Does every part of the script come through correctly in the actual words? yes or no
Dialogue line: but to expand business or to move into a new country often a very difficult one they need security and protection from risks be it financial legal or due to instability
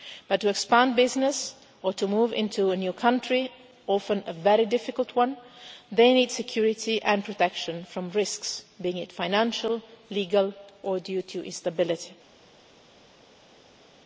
yes